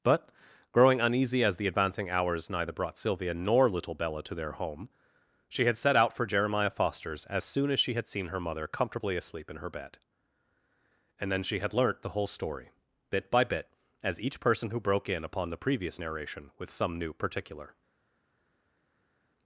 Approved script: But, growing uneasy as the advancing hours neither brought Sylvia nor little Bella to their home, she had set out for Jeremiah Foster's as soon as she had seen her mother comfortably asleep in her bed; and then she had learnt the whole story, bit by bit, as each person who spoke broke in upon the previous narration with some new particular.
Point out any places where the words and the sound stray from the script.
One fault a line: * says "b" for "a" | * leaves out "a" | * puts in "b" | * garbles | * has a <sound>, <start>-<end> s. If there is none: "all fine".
* leaves out "spoke"